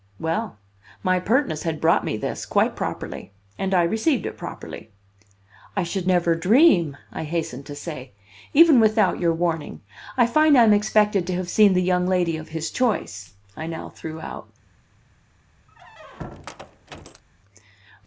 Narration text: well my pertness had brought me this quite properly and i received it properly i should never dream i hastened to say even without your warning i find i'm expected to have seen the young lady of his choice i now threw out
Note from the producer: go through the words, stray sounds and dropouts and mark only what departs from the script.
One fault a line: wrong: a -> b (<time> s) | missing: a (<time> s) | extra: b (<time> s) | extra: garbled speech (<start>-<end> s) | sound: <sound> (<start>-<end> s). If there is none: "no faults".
sound: squeak (15.7-17.2 s)